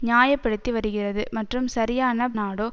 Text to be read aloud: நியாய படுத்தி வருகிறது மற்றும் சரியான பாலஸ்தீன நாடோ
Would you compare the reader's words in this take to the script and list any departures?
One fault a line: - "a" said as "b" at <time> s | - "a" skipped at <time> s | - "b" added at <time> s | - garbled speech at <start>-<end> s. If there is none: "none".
- "பாலஸ்தீன" skipped at 2.3 s